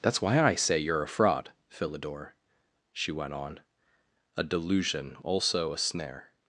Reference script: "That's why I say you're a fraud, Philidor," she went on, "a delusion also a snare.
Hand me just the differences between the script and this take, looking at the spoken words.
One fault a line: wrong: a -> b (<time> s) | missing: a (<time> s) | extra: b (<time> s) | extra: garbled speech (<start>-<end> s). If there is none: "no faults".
no faults